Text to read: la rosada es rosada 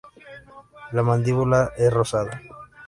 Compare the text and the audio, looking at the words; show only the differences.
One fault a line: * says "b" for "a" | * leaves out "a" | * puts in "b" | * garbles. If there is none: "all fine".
* says "mandíbula" for "rosada"